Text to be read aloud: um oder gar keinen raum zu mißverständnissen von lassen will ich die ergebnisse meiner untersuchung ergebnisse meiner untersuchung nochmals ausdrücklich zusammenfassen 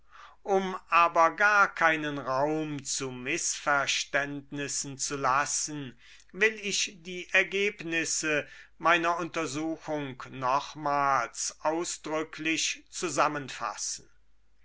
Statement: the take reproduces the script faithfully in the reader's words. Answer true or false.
false